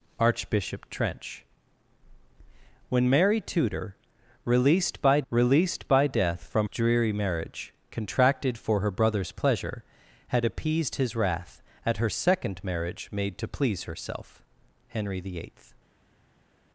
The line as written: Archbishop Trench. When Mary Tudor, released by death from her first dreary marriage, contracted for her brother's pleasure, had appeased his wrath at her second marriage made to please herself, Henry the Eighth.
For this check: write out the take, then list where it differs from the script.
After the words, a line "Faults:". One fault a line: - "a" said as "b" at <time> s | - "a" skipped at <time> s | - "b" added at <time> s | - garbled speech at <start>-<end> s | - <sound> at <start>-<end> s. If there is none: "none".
Archbishop Trench. When Mary Tudor, released by released by death from dreary marriage, contracted for her brother's pleasure, had appeased his wrath at her second marriage made to please herself, Henry the Eighth.
Faults:
- "released by" added at 5.3 s
- "her first" skipped at 6.7 s